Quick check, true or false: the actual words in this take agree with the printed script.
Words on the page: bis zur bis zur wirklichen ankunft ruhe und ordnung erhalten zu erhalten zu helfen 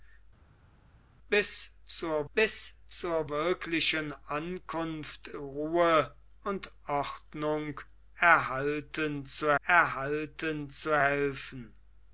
true